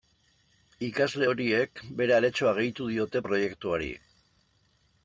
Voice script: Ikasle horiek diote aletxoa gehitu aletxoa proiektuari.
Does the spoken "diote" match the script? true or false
false